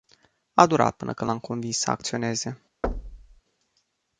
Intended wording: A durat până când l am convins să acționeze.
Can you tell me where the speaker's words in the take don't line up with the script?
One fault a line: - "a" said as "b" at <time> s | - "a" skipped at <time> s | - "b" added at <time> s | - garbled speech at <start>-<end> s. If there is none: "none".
none